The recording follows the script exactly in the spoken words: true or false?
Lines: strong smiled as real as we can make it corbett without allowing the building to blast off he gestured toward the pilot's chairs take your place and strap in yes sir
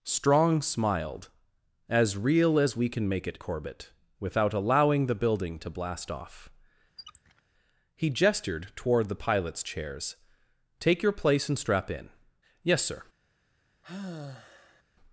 true